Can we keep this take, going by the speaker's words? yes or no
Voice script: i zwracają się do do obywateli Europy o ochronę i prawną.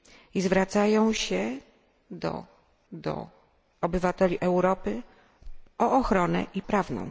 yes